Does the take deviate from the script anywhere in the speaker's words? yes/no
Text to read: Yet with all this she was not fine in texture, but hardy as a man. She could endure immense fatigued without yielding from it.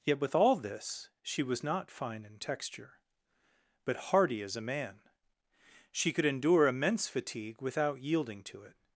yes